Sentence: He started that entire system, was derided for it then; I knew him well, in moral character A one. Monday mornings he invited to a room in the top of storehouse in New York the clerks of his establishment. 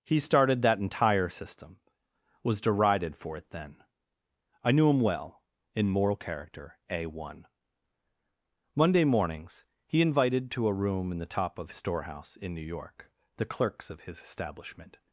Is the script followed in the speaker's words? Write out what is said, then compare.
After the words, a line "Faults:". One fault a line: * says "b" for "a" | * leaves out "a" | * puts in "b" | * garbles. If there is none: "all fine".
He started that entire system, was derided for it then; I knew him well, in moral character A one. Monday mornings he invited to a room in the top of storehouse in New York the clerks of his establishment.
Faults:
all fine